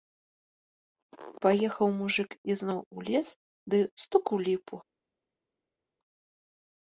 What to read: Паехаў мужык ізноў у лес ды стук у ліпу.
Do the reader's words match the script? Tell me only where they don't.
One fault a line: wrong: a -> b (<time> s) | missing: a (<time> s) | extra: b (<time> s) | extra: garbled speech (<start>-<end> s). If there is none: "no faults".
no faults